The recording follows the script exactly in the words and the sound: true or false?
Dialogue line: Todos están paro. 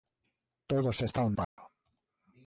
false